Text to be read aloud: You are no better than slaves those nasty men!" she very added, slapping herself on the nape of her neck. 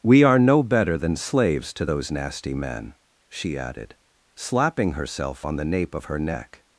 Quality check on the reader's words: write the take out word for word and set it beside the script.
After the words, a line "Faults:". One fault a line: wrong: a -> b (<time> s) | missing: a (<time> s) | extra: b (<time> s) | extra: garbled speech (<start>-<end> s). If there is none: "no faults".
We are no better than slaves to those nasty men!" she added, slapping herself on the nape of her neck.
Faults:
wrong: You -> We (0.0 s)
extra: to (1.7 s)
missing: very (3.6 s)